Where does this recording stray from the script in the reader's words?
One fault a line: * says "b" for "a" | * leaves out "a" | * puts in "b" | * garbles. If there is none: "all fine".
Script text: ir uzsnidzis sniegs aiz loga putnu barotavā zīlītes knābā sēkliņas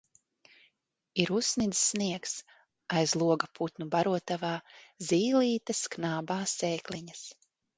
all fine